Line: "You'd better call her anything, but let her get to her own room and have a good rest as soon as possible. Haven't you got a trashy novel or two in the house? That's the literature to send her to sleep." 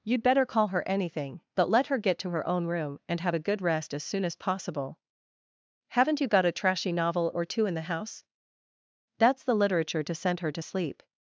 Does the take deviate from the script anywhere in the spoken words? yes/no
no